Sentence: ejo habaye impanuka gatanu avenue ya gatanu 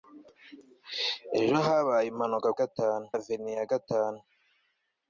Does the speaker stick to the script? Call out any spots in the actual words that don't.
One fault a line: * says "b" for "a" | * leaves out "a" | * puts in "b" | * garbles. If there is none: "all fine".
all fine